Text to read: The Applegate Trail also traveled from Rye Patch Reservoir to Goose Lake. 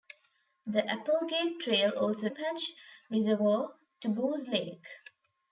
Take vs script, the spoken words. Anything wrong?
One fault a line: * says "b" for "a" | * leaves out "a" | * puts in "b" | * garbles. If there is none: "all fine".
* leaves out "traveled from Rye"